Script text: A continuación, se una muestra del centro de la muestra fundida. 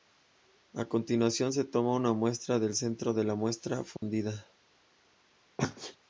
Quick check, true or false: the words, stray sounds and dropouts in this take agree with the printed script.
false